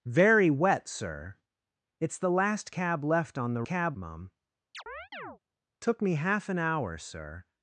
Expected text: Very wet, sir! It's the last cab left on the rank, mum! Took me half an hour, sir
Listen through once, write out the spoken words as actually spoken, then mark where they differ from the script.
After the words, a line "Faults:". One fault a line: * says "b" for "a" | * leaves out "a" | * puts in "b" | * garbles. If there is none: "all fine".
Very wet, sir! It's the last cab left on the cab, mum! Took me half an hour, sir
Faults:
* says "cab" for "rank"